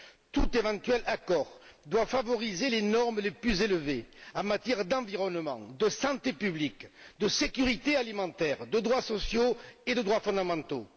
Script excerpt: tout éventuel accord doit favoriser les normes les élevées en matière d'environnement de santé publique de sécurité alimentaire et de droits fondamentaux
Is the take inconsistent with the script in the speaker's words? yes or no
yes